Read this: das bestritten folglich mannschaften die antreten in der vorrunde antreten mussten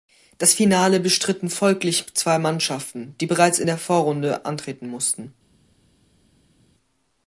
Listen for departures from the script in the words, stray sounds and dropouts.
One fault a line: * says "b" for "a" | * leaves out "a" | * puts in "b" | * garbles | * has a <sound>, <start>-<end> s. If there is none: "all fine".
* puts in "finale"
* puts in "zwei"
* says "bereits" for "antreten"